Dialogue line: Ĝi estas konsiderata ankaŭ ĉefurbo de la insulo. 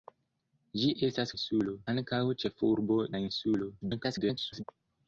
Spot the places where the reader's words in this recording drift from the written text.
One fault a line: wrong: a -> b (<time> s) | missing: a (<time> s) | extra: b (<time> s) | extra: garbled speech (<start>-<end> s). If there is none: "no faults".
wrong: konsiderata -> insulo (1.4 s)
missing: de (3.0 s)
extra: garbled speech (3.8-4.6 s)